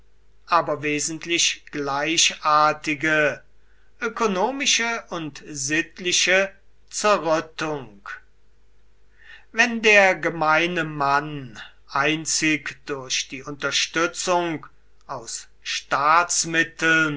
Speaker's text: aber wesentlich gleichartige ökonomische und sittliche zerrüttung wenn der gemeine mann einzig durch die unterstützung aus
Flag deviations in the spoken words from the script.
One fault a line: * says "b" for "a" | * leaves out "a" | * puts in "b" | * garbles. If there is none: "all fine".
all fine